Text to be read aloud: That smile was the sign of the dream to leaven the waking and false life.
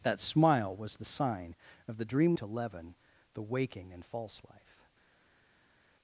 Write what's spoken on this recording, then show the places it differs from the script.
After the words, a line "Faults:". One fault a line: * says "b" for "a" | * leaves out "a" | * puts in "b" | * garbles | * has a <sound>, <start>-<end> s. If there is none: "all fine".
That smile was the sign of the dream to leaven the waking and false life.
Faults:
all fine